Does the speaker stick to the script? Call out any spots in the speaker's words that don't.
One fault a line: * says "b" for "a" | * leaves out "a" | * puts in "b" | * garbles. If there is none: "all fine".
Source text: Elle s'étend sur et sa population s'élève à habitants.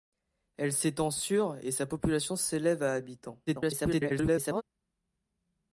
* garbles